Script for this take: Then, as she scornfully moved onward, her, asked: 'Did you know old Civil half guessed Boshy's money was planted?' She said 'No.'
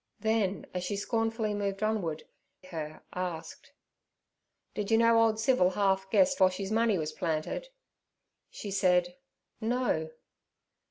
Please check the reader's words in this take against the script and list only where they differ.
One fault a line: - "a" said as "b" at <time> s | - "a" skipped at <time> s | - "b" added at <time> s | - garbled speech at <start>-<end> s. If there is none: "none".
none